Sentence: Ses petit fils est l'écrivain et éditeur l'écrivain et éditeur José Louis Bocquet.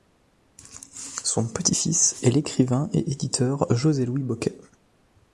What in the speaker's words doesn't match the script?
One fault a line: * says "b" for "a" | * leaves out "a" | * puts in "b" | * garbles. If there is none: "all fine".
* says "Son" for "Ses"
* leaves out "l'écrivain et éditeur"